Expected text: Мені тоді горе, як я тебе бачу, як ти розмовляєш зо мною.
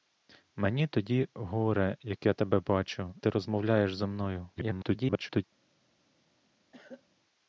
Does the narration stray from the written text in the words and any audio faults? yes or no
yes